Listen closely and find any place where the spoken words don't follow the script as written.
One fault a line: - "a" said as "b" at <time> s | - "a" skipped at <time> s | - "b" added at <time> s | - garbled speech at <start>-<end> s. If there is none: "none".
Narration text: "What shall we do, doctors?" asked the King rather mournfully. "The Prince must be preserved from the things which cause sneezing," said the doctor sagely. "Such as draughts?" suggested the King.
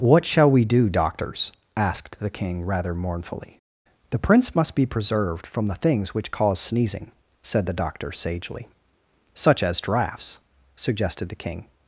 none